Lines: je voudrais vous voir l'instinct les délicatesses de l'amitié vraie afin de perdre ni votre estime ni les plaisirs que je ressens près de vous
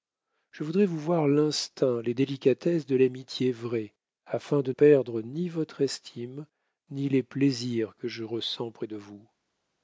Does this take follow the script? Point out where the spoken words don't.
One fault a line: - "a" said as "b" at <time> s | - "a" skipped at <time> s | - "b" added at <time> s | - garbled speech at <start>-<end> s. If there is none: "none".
none